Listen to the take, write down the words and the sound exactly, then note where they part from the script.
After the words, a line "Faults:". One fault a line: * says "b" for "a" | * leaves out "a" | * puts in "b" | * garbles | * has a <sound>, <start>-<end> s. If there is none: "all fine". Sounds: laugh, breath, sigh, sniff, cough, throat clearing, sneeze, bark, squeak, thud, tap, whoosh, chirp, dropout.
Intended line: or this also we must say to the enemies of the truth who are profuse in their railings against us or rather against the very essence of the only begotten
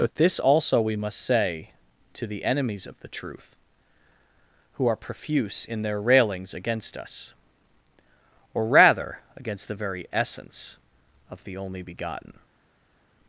but this also we must say to the enemies of the truth who are profuse in their railings against us or rather against the very essence of the only begotten
Faults:
* says "but" for "or"